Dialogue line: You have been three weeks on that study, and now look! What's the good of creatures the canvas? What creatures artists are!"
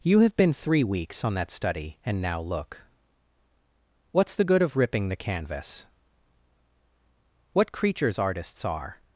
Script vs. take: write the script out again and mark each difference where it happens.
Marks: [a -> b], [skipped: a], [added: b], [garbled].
You have been three weeks on that study, and now look! What's the good of [creatures -> ripping] the canvas? What creatures artists are!"